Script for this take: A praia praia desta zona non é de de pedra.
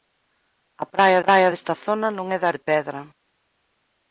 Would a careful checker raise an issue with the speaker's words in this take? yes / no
no